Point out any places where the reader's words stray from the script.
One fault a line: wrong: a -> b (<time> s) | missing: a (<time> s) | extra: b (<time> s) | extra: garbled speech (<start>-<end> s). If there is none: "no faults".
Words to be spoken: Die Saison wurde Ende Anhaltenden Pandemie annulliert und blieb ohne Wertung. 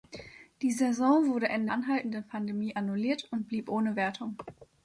no faults